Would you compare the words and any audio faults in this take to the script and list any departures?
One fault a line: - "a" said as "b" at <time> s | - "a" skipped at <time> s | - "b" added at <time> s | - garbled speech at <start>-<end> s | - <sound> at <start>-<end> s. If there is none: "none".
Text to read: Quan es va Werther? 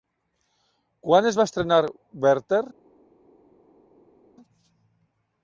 - "estrenar" added at 1.5 s